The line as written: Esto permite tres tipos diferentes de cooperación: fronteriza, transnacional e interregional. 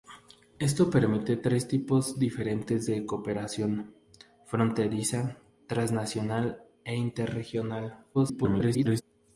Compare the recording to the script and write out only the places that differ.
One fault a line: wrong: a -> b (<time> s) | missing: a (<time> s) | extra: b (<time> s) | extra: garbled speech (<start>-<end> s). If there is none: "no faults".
extra: garbled speech (8.1-9.0 s)